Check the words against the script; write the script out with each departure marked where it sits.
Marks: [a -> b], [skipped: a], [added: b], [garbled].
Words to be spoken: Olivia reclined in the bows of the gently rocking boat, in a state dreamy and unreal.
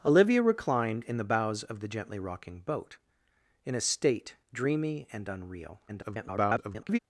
Olivia reclined in the bows of the gently rocking boat, in a state dreamy and unreal. [garbled]